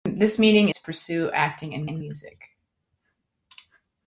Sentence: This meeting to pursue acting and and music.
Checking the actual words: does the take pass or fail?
pass